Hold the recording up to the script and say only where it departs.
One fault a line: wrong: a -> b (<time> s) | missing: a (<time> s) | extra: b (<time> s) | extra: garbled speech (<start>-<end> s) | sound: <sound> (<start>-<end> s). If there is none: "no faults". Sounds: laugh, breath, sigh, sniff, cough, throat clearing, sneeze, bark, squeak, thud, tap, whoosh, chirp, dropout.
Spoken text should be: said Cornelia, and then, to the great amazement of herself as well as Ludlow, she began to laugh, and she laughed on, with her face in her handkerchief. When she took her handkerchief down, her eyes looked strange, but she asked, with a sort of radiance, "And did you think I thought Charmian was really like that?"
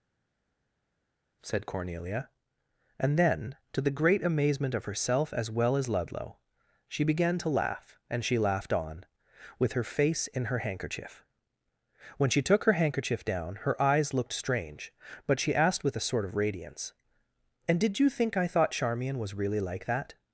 no faults